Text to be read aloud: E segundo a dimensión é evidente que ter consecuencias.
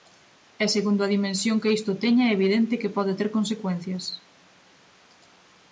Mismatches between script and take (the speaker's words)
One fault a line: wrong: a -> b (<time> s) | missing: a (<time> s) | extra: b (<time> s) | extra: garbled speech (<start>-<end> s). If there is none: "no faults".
extra: que isto teña (1.6 s)
extra: pode (3.0 s)